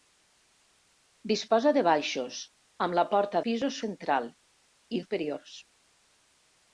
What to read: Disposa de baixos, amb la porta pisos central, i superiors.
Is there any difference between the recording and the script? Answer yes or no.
no